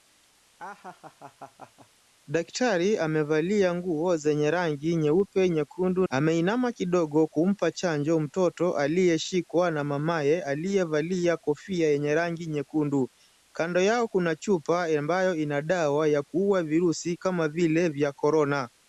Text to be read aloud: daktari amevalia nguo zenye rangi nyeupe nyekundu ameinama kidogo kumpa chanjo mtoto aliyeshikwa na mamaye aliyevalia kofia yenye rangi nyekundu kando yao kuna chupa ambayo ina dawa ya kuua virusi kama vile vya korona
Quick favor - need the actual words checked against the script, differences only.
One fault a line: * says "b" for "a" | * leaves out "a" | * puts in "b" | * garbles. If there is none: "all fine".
all fine